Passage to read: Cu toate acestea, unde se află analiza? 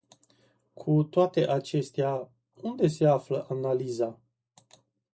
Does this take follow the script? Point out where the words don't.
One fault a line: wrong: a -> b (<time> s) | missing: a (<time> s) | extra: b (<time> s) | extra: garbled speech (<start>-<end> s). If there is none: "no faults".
no faults